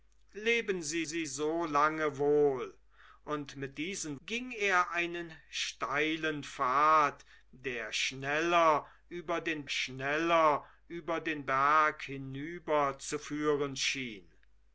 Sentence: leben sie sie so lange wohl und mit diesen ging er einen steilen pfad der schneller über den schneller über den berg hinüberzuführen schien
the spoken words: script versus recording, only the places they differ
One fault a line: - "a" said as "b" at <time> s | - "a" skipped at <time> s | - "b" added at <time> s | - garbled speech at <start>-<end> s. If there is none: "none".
none